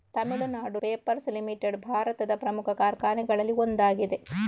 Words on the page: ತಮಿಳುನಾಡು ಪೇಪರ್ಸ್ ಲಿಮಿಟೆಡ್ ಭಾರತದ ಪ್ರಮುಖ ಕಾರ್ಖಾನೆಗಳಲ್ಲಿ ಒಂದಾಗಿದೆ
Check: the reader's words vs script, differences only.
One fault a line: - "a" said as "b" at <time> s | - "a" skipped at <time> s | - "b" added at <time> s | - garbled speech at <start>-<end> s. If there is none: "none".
none